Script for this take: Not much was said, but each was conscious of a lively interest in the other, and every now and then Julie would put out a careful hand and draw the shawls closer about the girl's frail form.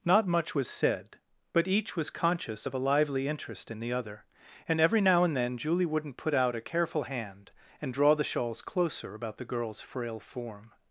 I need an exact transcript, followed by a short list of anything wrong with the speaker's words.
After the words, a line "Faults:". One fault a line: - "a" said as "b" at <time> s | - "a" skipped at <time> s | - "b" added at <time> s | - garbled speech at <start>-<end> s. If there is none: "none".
Not much was said, but each was conscious of a lively interest in the other, and every now and then Julie wouldn't put out a careful hand and draw the shawls closer about the girl's frail form.
Faults:
- "would" said as "wouldn't" at 5.8 s